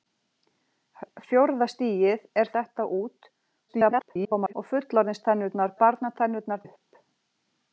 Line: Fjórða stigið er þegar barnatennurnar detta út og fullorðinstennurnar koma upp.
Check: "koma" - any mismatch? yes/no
yes